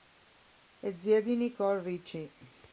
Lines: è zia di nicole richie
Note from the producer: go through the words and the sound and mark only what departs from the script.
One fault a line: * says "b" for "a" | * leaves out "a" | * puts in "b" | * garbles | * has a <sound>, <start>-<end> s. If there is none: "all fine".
all fine